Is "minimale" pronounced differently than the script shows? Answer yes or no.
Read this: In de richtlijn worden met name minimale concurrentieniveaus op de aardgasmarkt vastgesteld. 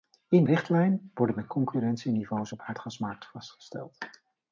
yes